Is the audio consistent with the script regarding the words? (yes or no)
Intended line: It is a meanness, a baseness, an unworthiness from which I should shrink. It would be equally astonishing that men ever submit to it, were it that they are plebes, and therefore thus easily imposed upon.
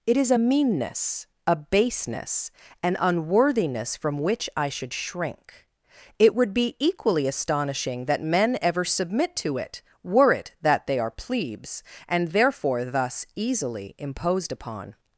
yes